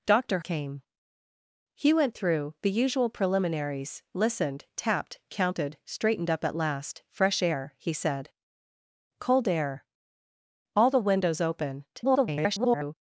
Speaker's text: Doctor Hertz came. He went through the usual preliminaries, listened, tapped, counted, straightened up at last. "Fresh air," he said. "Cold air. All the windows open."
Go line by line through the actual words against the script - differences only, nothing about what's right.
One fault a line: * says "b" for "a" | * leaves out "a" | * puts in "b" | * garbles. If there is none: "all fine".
* leaves out "Hertz"
* garbles